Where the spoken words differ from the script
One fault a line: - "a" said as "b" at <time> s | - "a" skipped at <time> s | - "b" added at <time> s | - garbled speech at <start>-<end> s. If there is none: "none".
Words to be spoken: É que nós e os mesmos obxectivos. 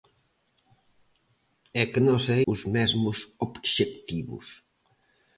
none